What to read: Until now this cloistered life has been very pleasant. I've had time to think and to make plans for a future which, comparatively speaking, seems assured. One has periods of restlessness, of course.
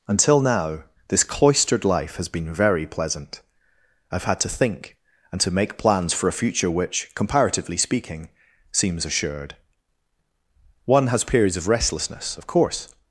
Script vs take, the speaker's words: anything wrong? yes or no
yes